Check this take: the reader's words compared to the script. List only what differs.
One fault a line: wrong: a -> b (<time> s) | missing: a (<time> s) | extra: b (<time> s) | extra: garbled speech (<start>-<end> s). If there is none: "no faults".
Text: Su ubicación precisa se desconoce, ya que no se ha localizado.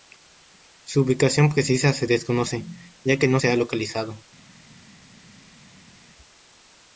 no faults